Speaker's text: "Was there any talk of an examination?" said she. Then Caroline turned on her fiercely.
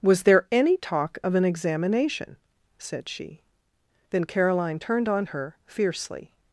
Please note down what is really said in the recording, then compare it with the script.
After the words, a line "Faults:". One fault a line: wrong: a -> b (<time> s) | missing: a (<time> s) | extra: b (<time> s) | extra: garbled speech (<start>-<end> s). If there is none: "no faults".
"Was there any talk of an examination?" said she. Then Caroline turned on her fiercely.
Faults:
no faults